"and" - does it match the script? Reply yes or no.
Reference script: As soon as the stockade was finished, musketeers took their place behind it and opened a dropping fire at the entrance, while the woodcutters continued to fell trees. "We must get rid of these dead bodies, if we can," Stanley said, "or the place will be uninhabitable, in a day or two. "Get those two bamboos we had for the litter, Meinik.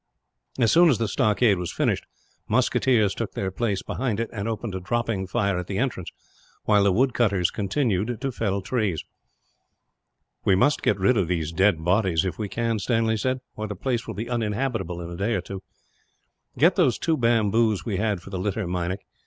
yes